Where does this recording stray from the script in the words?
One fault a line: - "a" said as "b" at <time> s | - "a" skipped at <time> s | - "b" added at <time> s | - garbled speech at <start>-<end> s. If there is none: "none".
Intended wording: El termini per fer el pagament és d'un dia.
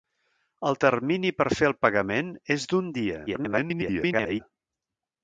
- garbled speech at 3.3-4.4 s